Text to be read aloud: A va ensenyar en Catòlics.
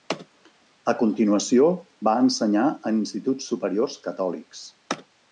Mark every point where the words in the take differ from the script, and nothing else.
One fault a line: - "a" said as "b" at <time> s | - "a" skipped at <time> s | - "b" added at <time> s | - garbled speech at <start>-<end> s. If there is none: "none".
- "continuació" added at 1.0 s
- "instituts superiors" added at 3.0 s